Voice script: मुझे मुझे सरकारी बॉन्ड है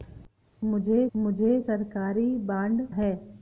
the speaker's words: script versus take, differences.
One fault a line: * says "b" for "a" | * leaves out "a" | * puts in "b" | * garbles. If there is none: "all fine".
all fine